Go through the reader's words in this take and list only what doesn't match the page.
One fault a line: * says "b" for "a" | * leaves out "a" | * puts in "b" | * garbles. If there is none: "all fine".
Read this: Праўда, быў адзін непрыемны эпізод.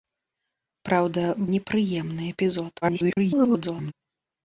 * leaves out "быў адзін"
* garbles